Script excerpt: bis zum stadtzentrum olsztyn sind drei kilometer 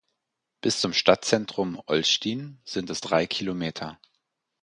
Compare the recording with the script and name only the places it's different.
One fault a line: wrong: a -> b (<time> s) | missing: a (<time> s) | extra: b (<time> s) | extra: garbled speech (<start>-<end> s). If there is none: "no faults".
extra: es (2.9 s)